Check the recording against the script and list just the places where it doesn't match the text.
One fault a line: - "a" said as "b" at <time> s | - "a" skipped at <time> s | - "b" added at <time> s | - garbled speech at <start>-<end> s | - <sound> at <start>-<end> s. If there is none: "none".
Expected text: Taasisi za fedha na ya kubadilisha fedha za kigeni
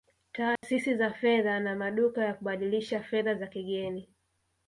- dropout at 0.6-0.6 s
- "maduka" added at 1.8 s